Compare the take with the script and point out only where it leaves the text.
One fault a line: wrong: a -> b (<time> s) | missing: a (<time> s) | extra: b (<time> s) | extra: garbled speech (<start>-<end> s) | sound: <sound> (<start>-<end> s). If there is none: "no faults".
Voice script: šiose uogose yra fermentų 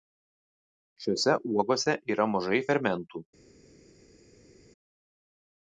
extra: mažai (2.3 s)